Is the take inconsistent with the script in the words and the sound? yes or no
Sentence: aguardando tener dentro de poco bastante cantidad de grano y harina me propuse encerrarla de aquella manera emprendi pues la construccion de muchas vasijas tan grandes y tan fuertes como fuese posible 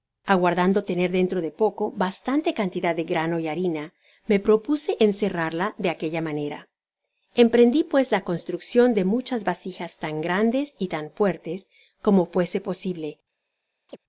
yes